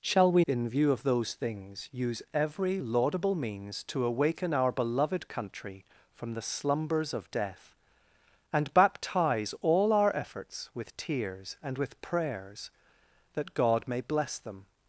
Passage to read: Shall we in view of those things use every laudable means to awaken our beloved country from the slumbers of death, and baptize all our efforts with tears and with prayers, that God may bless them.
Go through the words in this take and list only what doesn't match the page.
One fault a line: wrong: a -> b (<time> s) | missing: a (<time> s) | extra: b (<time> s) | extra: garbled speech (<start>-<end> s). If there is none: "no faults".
no faults